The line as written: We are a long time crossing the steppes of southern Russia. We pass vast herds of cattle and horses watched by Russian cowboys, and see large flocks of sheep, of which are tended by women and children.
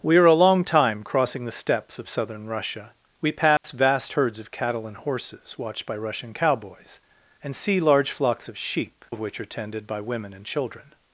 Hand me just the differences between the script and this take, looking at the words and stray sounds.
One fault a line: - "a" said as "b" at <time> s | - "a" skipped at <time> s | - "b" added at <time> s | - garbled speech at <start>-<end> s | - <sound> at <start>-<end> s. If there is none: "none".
- dropout at 3.6-3.6 s